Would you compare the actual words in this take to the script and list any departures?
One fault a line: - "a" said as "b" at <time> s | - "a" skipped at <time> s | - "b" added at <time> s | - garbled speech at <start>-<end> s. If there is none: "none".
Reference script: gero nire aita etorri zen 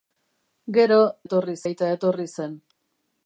- "nire" said as "etorri" at 1.3 s